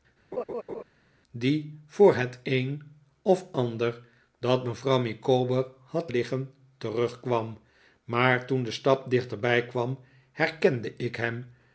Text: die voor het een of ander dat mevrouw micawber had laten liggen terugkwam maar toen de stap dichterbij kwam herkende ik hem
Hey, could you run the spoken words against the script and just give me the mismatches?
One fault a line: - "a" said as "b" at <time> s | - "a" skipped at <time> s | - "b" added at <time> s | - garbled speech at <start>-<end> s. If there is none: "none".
- "laten" skipped at 6.1 s